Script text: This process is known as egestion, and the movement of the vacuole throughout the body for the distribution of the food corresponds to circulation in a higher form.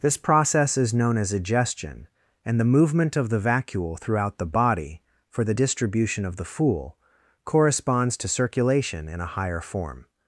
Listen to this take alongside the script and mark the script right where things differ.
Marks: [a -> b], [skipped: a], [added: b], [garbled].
This process is known as egestion, and the movement of the vacuole throughout the body for the distribution of the [food -> fool] corresponds to circulation in a higher form.